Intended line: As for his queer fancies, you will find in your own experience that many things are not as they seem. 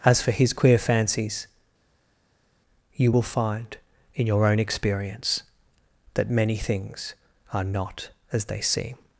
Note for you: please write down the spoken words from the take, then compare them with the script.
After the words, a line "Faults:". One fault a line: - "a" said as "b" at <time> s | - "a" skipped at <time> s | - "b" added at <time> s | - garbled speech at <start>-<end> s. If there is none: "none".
As for his queer fancies, you will find in your own experience that many things are not as they seem.
Faults:
none